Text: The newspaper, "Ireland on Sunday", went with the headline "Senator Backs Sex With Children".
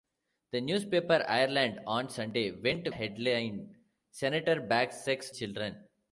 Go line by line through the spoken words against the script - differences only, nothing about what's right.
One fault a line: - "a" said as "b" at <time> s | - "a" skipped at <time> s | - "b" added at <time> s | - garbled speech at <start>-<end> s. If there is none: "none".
- "with the" skipped at 2.9 s
- "With" skipped at 5.3 s